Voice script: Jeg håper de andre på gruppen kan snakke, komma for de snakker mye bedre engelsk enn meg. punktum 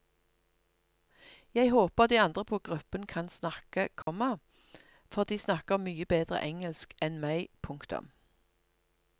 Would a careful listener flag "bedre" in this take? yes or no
no